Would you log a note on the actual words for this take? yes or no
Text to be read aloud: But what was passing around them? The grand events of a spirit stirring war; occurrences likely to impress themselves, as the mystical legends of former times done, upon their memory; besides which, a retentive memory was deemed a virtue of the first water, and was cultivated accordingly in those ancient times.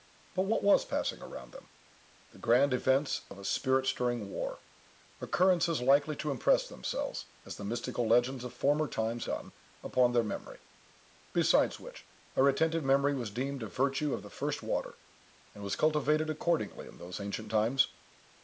no